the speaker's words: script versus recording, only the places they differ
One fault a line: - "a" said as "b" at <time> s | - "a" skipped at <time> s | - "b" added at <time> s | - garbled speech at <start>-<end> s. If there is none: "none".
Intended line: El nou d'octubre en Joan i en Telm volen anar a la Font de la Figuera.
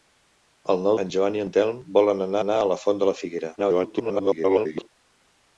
- "d'octubre" skipped at 0.9 s
- "anar" added at 2.4 s
- garbled speech at 3.6-4.9 s